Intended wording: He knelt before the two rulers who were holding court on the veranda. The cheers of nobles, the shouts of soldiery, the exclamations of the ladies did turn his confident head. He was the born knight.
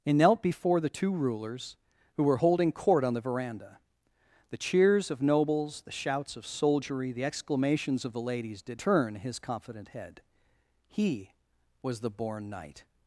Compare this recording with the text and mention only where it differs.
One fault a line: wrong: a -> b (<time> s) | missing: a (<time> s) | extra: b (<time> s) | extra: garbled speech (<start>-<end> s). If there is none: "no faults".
no faults